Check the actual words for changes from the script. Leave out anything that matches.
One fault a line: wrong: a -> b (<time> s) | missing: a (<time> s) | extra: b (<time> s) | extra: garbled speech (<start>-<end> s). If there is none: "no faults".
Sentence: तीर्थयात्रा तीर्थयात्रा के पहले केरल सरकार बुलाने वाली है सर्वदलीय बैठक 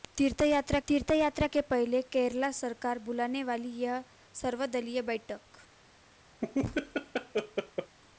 no faults